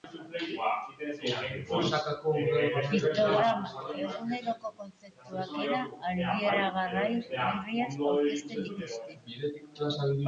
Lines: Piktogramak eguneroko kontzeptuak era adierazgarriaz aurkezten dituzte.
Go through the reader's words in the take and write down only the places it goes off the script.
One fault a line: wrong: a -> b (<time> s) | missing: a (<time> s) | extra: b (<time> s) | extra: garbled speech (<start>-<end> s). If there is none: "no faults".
no faults